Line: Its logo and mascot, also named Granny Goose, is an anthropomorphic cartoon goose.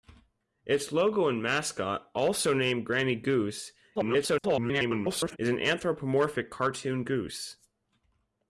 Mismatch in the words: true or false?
true